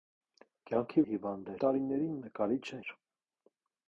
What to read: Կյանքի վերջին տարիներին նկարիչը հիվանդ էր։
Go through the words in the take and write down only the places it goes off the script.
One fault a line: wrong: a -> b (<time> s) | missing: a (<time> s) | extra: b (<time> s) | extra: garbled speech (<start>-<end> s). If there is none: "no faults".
wrong: վերջին -> հիվանդ (1.1 s)
missing: հիվանդ (2.8 s)